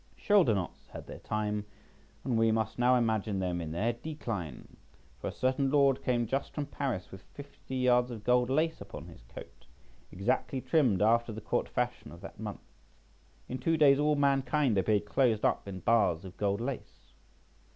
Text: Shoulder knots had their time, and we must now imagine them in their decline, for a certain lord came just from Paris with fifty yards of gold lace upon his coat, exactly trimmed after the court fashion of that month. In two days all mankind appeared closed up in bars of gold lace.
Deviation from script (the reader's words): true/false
false